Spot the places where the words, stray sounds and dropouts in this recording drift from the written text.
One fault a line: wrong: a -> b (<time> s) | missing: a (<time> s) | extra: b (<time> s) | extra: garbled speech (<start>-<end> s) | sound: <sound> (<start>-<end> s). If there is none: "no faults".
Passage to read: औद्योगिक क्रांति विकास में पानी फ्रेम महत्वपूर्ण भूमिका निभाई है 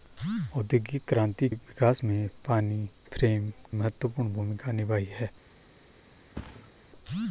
sound: thud (6.3-6.7 s)